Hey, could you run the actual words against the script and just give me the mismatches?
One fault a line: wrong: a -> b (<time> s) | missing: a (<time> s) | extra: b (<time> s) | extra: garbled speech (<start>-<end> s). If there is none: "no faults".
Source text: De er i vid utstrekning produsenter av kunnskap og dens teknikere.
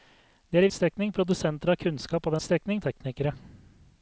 missing: vid (0.7 s)
wrong: dens -> utstrekning (2.4 s)